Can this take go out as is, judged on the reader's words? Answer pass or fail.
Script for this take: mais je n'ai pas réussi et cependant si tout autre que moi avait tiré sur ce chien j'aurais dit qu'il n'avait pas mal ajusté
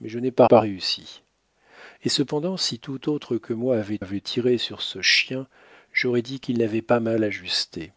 fail